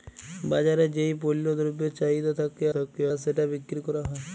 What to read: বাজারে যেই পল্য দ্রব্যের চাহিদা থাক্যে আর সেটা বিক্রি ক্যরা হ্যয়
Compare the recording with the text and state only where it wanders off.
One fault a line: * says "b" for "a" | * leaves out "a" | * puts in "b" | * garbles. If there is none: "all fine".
* puts in "থাক্যে"